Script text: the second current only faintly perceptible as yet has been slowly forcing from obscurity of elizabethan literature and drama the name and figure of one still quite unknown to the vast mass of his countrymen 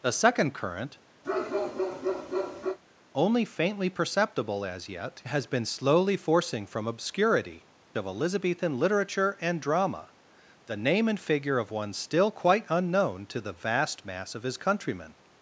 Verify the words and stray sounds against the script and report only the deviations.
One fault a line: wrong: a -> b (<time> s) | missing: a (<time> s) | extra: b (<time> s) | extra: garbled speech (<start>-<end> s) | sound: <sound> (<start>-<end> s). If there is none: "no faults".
sound: bark (1.2-2.8 s)